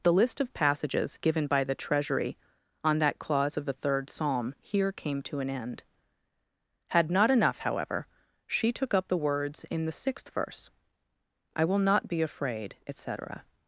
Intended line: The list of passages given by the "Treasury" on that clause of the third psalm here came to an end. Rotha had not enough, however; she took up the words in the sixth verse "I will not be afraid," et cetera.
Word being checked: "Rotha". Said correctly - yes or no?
no